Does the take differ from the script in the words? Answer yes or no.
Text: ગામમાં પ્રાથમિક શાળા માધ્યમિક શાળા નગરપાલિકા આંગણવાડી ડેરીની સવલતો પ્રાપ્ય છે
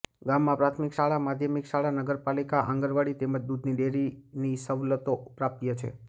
yes